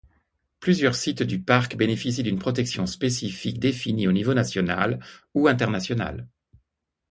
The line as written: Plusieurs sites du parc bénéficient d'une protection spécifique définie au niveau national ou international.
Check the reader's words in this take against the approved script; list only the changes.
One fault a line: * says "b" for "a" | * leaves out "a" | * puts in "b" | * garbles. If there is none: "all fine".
all fine